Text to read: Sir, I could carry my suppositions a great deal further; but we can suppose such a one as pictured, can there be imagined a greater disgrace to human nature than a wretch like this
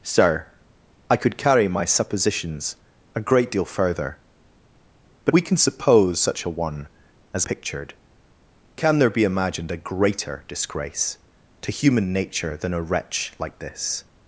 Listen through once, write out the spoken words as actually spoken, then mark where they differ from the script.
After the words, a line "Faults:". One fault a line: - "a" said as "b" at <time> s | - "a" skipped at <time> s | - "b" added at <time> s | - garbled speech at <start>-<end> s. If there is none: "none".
Sir, I could carry my suppositions a great deal further; but we can suppose such a one as pictured, can there be imagined a greater disgrace to human nature than a wretch like this
Faults:
none